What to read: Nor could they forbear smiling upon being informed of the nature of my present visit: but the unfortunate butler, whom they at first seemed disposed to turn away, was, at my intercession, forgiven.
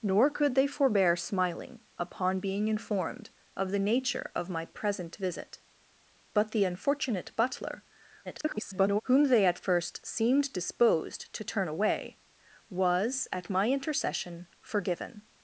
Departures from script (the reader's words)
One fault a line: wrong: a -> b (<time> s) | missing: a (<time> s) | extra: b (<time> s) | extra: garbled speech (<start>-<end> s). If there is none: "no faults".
extra: garbled speech (8.2-9.0 s)